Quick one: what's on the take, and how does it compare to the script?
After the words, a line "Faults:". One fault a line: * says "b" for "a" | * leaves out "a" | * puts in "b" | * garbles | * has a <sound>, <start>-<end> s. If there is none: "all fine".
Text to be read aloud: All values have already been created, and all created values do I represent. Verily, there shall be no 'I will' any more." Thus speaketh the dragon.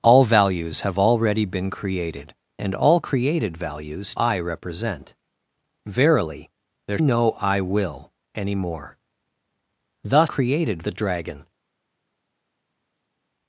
All values have already been created, and all created values I represent. Verily, there no 'I will' any more." Thus created the dragon.
Faults:
* leaves out "do"
* leaves out "shall be"
* says "created" for "speaketh"